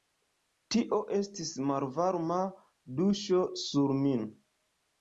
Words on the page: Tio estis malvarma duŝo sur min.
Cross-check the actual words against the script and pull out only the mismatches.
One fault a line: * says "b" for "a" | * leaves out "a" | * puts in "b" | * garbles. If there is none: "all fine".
all fine